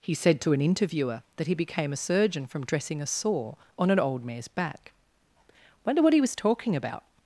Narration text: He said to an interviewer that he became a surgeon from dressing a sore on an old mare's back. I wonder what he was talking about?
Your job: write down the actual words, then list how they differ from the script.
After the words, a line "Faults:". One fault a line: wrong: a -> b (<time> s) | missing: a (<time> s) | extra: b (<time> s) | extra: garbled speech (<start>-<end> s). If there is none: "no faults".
He said to an interviewer that he became a surgeon from dressing a sore on an old mare's back. wonder what he was talking about?
Faults:
missing: I (4.9 s)